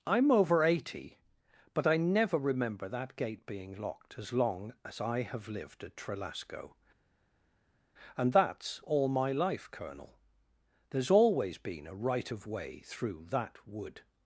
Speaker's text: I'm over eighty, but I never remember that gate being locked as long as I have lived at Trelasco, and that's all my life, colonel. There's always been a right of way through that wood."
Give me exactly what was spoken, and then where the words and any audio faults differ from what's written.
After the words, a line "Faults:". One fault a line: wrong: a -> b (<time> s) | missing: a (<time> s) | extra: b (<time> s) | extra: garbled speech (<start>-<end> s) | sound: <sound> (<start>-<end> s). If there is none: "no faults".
I'm over eighty, but I never remember that gate being locked as long as I have lived at Trelasco, and that's all my life, colonel. There's always been a right of way through that wood."
Faults:
no faults